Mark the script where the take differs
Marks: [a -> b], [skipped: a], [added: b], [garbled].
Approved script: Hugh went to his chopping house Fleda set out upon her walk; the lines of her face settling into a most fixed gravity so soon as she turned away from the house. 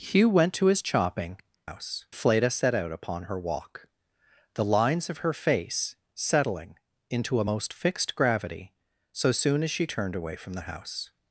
Hugh went to his chopping house Fleda set out upon her walk; the lines of her face settling into a most fixed gravity so soon as she turned away from the house.